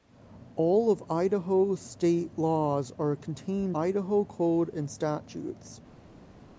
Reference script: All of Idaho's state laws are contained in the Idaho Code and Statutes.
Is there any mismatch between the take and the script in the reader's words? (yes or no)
yes